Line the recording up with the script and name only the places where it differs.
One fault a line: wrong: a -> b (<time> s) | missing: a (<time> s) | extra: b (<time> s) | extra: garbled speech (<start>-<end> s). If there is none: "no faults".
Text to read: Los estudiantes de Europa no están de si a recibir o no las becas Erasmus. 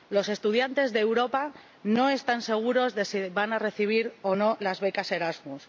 extra: seguros (2.4 s)
extra: van (3.3 s)